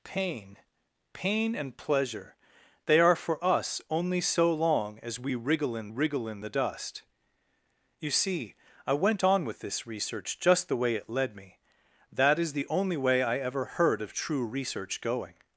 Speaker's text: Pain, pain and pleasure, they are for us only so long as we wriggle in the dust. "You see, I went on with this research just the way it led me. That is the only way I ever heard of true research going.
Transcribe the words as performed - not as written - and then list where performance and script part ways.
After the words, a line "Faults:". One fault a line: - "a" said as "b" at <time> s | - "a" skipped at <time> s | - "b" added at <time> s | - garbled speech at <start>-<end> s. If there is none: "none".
Pain, pain and pleasure, they are for us only so long as we wriggle in wriggle in the dust. "You see, I went on with this research just the way it led me. That is the only way I ever heard of true research going.
Faults:
- "wriggle in" added at 5.9 s